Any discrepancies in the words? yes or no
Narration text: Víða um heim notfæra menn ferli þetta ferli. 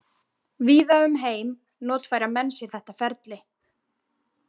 yes